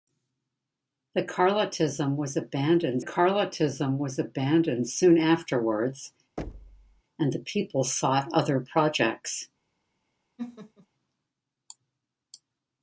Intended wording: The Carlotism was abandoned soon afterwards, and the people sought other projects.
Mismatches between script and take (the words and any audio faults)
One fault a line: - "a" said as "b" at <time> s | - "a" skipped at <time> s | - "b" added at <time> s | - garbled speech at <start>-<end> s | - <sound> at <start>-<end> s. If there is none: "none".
- "Carlotism was abandoned" added at 3.0 s
- thud at 6.4-7.0 s
- laugh at 10.4-10.9 s